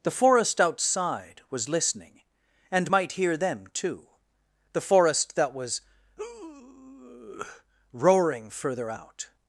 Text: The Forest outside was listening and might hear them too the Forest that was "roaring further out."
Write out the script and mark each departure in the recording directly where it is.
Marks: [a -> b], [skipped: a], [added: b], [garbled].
The Forest outside was listening and might hear them too the Forest that was "roaring further out."